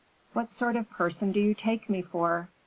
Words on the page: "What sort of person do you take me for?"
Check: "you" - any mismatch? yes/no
no